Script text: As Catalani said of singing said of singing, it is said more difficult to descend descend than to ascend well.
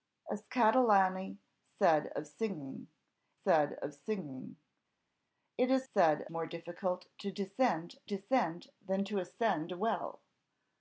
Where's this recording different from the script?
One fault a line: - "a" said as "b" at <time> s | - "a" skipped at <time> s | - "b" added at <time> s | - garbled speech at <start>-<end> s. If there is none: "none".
none